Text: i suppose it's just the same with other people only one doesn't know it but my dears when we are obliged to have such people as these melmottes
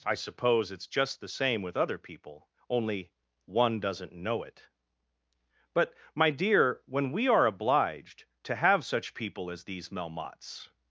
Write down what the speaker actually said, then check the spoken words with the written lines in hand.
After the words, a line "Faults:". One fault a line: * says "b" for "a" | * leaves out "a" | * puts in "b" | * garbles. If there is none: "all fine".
i suppose it's just the same with other people only one doesn't know it but my dear when we are obliged to have such people as these melmottes
Faults:
* says "dear" for "dears"